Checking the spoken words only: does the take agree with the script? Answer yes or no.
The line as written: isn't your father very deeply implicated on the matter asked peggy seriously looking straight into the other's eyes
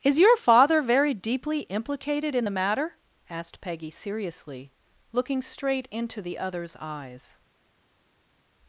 no